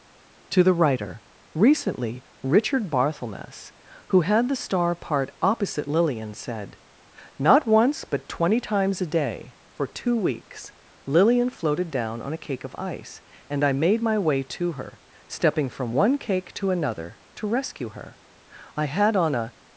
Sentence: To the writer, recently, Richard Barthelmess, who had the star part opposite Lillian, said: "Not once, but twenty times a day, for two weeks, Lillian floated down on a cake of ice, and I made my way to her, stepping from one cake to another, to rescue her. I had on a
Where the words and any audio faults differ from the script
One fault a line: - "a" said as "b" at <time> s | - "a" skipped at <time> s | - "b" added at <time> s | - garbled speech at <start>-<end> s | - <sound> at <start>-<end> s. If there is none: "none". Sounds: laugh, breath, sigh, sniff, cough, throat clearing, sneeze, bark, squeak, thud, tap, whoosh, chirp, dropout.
none